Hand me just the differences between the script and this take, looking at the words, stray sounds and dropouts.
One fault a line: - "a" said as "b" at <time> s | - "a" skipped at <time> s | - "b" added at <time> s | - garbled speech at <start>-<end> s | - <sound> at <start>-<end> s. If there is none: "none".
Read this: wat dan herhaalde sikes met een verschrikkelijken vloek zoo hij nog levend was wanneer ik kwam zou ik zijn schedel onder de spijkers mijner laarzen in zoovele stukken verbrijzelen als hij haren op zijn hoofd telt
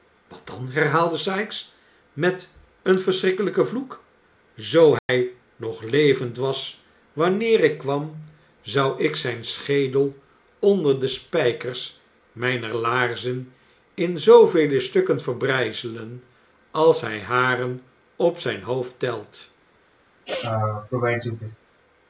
- dropout at 5.0-5.1 s
- sneeze at 20.3-21.6 s